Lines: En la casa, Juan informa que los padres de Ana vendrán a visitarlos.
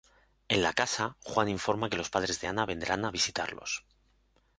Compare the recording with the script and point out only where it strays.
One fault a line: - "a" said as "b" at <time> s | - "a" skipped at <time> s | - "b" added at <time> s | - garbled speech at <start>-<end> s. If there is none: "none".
none